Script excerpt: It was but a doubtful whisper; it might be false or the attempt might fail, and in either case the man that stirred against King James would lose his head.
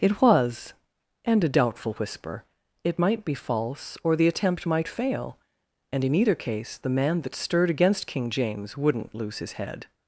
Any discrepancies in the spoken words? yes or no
yes